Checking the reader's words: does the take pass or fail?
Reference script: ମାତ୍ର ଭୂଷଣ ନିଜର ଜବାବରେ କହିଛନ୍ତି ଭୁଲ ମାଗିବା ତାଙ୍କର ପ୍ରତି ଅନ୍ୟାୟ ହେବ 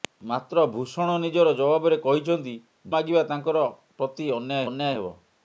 fail